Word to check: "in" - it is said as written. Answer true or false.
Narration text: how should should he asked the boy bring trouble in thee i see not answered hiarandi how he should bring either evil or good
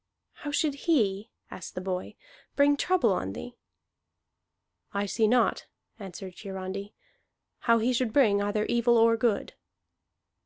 false